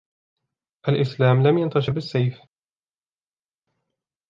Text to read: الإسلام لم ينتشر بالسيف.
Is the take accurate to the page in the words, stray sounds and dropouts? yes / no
yes